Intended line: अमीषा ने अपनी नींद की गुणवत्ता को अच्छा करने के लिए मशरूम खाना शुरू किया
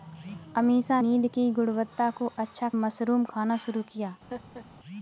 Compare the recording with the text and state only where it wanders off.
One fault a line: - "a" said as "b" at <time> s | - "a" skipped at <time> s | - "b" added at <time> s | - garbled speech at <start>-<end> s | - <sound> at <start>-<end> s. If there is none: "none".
- "ने अपनी" skipped at 1.0 s
- "करने के लिए" skipped at 2.7 s
- laugh at 4.3-4.7 s